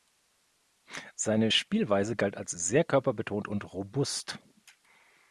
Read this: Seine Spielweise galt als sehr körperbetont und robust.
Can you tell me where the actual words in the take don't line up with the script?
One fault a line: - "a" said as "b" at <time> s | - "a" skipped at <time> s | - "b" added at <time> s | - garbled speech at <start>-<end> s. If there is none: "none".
none